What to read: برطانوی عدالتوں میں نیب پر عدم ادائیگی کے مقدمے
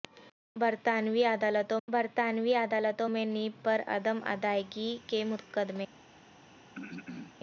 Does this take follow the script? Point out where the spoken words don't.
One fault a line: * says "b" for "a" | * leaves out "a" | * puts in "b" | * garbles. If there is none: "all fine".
* puts in "برطانوی عدالتوں"